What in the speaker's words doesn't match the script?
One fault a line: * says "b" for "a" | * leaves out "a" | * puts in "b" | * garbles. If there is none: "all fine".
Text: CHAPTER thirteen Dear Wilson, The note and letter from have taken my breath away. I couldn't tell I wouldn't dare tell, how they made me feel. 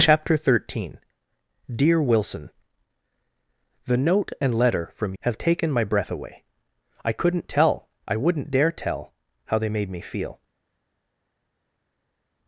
all fine